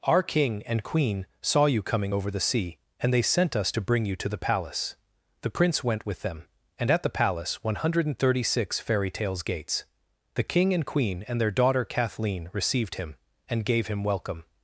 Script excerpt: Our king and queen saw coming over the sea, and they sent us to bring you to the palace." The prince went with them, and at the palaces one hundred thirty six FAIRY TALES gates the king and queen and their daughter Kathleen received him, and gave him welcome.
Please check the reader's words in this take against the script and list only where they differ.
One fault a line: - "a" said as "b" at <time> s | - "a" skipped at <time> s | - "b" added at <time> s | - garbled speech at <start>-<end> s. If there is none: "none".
- "you" added at 1.7 s
- "palaces" said as "palace" at 7.1 s